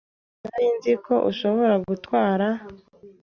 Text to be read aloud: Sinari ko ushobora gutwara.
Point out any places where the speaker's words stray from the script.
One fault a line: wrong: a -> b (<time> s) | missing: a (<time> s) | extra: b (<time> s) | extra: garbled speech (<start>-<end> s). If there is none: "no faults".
extra: nzi (0.8 s)